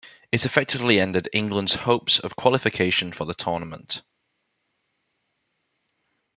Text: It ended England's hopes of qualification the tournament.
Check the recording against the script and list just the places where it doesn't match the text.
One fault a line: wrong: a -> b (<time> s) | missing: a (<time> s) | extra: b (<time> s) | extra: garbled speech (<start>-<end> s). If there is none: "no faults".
extra: effectively (0.5 s)
extra: for (3.1 s)